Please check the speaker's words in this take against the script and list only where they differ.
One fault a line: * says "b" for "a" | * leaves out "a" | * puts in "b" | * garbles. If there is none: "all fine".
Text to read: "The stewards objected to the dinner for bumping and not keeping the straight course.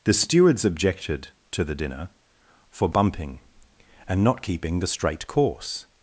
all fine